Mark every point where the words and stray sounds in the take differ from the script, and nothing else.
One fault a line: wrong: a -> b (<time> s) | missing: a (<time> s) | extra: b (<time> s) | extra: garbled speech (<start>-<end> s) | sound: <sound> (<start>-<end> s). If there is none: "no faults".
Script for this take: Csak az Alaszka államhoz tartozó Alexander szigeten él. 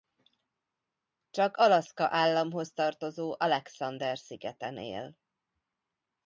missing: az (1.6 s)